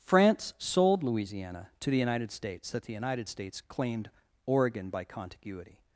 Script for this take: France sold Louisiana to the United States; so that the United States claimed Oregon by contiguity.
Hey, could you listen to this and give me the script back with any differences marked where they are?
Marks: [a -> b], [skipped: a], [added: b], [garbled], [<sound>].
France sold Louisiana to the United States; [skipped: so] that the United States claimed Oregon by contiguity.